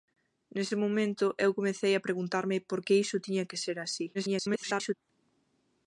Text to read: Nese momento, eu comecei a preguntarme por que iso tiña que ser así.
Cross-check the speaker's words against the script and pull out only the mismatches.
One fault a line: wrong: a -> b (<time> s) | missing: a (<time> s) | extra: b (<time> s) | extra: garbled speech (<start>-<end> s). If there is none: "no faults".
extra: garbled speech (4.1-4.9 s)